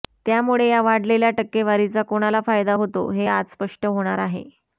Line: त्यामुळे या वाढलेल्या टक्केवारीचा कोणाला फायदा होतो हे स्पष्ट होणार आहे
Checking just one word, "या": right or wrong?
right